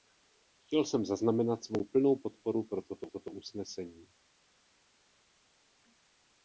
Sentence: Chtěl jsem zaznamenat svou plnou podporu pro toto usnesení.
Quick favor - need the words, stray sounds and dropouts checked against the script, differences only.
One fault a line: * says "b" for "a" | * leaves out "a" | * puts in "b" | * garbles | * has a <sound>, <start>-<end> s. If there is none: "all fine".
* puts in "toto"